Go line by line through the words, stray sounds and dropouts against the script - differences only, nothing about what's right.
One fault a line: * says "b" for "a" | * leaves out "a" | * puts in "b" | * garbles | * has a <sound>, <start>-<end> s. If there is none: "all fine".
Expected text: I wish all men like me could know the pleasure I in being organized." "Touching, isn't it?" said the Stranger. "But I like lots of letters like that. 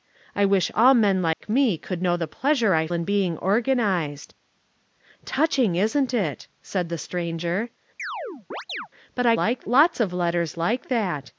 * has a dropout, 1.3-1.4 s
* has a chirp, 8.0-8.9 s